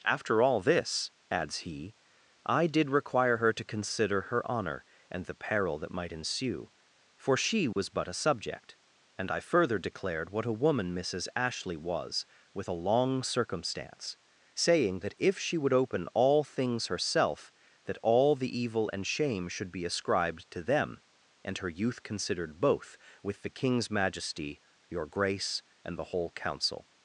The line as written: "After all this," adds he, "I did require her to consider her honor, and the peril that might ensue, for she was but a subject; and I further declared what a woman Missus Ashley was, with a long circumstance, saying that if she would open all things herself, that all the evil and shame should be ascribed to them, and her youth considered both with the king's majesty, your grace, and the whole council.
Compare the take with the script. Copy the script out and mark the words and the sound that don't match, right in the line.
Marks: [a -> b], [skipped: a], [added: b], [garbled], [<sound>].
"After all this," adds he, "I did require her to consider her honor, and the peril that might ensue, for she was [dropout] but a subject; and I further declared what a woman Missus Ashley was, with a long circumstance, saying that if she would open all things herself, that all the evil and shame should be ascribed to them, and her youth considered both with the king's majesty, your grace, and the whole council.